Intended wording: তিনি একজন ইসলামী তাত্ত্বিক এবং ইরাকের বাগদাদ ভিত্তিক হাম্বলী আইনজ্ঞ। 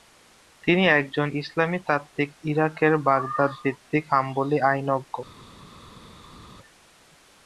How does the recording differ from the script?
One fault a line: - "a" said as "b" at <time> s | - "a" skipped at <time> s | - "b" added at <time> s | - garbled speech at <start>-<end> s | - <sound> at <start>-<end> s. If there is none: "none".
- "এবং" skipped at 2.3 s